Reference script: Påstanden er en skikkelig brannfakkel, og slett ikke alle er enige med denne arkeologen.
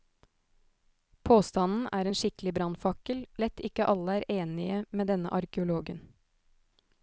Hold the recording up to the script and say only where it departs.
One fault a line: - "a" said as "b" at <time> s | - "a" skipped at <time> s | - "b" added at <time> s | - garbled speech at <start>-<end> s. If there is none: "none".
- "og" skipped at 3.2 s